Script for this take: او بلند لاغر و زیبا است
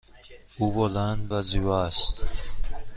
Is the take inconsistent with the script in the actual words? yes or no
yes